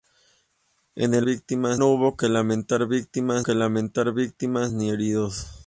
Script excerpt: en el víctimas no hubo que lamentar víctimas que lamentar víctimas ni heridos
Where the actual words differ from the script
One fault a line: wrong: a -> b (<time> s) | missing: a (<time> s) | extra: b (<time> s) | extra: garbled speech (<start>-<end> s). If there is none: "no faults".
no faults